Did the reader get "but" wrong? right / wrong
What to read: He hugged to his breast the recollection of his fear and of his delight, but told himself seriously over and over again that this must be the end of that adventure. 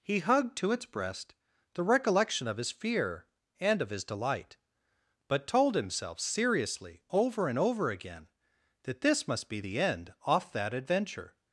right